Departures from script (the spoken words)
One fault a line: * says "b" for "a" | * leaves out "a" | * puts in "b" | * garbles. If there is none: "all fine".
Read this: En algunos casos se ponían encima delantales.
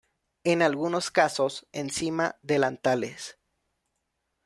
* leaves out "se ponían"